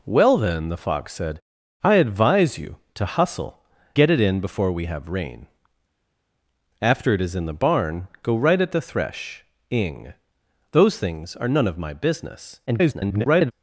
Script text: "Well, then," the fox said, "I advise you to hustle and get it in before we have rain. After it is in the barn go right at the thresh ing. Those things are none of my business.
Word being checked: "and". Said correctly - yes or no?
no